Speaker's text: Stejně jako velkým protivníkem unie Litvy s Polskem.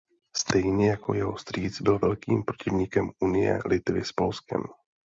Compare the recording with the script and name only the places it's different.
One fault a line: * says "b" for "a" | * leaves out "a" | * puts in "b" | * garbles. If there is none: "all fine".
* puts in "jeho strýc byl"